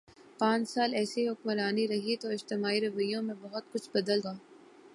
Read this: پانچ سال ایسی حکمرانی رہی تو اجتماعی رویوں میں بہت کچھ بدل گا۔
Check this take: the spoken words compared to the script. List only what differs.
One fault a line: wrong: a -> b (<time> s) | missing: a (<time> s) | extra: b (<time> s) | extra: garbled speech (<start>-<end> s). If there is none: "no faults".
no faults